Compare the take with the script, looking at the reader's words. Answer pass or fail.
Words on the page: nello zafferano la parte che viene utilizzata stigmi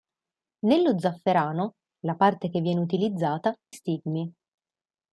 pass